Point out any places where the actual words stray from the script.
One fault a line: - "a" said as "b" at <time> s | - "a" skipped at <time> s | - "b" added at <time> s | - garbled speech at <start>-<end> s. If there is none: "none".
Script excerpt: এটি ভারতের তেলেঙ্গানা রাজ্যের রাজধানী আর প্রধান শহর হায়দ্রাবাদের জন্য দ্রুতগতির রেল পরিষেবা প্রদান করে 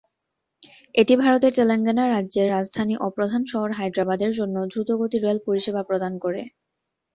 - "আর" said as "ও" at 3.0 s